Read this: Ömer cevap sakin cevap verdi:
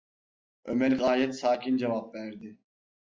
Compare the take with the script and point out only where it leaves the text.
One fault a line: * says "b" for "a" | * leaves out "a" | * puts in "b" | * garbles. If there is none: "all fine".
* says "gayet" for "cevap"